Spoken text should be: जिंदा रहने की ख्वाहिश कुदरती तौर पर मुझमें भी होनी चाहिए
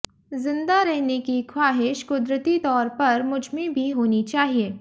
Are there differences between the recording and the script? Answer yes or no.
no